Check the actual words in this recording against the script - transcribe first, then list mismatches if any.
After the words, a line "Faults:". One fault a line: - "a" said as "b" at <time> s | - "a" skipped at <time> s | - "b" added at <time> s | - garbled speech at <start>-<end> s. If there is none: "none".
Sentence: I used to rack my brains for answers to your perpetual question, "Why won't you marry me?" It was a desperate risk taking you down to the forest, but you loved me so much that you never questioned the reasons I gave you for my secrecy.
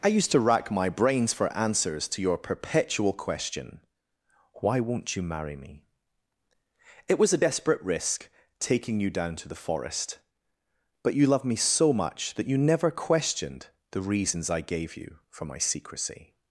I used to rack my brains for answers to your perpetual question, "Why won't you marry me?" It was a desperate risk taking you down to the forest, but you loved me so much that you never questioned the reasons I gave you for my secrecy.
Faults:
none